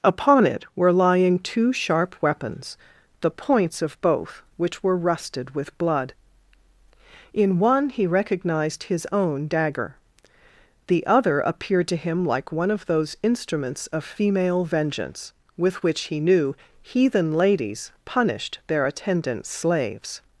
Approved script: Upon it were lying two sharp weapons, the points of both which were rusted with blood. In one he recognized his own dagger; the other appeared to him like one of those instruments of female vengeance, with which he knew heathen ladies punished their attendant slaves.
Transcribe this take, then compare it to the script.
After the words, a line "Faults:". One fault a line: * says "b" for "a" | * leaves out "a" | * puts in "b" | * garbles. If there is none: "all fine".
Upon it were lying two sharp weapons, the points of both which were rusted with blood. In one he recognized his own dagger; the other appeared to him like one of those instruments of female vengeance, with which he knew heathen ladies punished their attendant slaves.
Faults:
all fine